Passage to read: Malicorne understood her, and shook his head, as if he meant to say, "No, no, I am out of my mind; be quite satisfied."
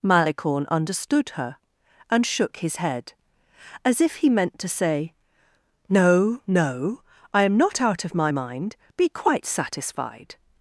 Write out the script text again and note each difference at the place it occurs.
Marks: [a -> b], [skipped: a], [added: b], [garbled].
Malicorne understood her, and shook his head, as if he meant to say, "No, no, I am [added: not] out of my mind; be quite satisfied."